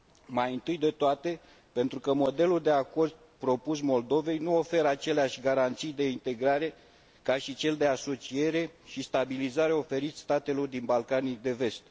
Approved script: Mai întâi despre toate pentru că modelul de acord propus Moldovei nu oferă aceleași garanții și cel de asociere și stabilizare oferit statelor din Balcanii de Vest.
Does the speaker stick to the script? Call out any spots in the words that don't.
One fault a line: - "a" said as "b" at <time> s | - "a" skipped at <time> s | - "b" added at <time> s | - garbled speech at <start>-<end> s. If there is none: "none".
- "despre" said as "de" at 0.8 s
- "de integrare ca" added at 5.9 s